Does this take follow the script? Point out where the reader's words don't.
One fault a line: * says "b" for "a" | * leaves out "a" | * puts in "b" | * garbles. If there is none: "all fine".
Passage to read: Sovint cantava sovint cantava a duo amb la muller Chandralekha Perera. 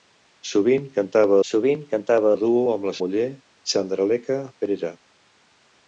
all fine